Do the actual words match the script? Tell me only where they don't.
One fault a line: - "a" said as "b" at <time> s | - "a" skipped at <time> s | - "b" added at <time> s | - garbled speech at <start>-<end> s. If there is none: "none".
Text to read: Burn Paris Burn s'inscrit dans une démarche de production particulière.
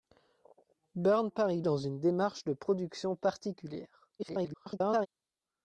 - "Burn s'inscrit" skipped at 1.6 s
- garbled speech at 4.2-5.1 s